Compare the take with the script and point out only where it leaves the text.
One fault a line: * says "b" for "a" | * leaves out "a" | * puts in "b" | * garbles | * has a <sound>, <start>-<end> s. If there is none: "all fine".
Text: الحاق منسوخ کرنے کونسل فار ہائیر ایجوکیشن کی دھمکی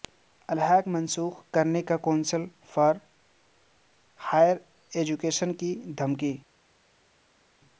all fine